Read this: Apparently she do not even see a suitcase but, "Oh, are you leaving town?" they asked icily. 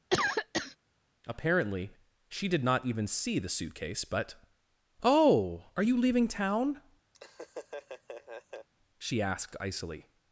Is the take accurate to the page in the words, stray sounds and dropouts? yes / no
no